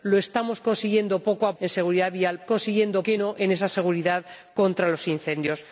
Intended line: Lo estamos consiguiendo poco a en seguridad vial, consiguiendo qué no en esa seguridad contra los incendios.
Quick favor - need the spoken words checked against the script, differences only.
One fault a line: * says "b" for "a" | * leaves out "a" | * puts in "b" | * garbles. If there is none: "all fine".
all fine